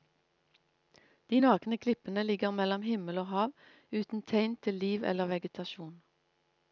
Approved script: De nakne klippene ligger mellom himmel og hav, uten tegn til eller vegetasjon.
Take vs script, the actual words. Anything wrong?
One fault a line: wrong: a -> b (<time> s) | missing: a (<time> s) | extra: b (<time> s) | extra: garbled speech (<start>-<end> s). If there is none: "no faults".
extra: liv (4.8 s)